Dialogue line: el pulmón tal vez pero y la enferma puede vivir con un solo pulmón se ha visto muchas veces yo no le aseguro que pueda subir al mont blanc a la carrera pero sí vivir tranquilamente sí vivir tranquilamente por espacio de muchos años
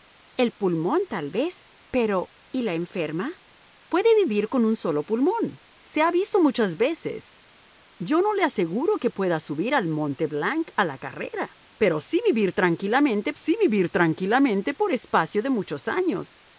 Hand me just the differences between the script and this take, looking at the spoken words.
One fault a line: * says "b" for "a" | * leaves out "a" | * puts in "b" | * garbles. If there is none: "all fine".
all fine